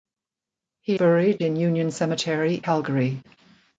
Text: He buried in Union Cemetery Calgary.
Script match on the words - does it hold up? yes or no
yes